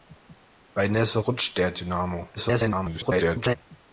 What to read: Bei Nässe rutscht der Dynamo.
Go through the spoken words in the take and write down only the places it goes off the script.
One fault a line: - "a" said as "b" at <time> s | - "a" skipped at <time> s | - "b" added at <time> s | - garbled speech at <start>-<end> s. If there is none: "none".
- garbled speech at 2.4-3.6 s